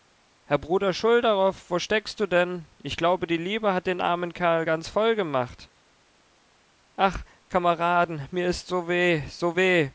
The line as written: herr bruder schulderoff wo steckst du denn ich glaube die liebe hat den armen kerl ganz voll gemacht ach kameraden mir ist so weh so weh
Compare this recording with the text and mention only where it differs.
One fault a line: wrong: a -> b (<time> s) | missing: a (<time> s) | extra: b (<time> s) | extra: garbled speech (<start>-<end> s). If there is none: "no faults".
no faults